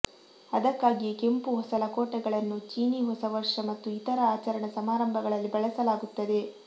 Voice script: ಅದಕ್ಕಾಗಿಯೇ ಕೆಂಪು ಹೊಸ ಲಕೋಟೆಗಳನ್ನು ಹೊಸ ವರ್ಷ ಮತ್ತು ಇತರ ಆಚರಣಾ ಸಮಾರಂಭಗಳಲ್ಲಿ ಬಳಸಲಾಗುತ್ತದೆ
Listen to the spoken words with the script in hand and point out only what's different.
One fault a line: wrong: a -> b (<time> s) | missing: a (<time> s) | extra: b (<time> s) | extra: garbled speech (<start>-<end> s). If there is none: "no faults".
extra: ಚೀನೀ (2.7 s)